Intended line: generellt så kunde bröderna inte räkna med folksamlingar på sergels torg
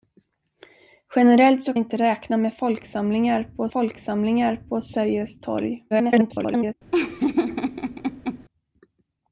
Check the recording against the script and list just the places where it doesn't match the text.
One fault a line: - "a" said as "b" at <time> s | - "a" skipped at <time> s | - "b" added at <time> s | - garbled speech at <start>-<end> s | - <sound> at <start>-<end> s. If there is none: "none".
- "kunde bröderna" skipped at 1.7 s
- "folksamlingar på" added at 3.7 s
- garbled speech at 5.9-6.7 s
- laugh at 6.9-8.4 s